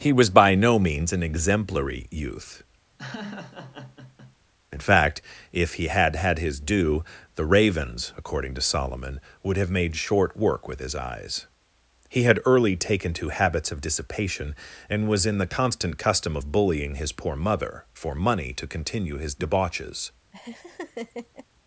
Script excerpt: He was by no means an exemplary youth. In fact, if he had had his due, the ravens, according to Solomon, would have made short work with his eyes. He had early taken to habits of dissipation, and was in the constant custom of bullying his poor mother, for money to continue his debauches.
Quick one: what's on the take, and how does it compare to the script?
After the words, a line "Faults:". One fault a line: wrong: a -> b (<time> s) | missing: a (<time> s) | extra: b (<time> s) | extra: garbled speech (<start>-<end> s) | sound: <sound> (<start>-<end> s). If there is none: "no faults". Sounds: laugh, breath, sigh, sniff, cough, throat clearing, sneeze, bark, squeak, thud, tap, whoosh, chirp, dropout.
He was by no means an exemplary youth. In fact, if he had had his due, the ravens, according to Solomon, would have made short work with his eyes. He had early taken to habits of dissipation, and was in the constant custom of bullying his poor mother, for money to continue his debauches.
Faults:
sound: laugh (3.0-4.4 s)
sound: laugh (20.3-21.5 s)